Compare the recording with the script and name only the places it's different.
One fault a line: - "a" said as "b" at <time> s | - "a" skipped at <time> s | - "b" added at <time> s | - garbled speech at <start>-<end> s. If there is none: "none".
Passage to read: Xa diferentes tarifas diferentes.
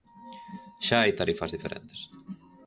- "diferentes" said as "hai" at 1.0 s